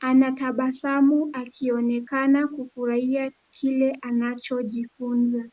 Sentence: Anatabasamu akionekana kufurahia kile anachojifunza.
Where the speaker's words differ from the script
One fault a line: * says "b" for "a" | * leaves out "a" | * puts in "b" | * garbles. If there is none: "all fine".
all fine